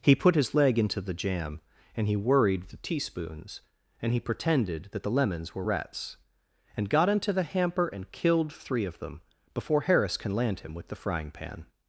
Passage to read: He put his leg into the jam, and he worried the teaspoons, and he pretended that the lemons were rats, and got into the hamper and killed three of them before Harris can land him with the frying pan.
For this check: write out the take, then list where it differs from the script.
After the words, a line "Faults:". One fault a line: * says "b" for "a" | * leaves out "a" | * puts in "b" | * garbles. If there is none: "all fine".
He put his leg into the jam, and he worried the teaspoons, and he pretended that the lemons were rats, and got into the hamper and killed three of them before Harris can land him with the frying pan.
Faults:
all fine